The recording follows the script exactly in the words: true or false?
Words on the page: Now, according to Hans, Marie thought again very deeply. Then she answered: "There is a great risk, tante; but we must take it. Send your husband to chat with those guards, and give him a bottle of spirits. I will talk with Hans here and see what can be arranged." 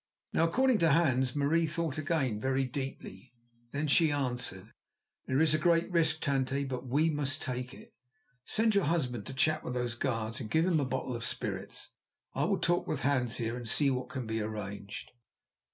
true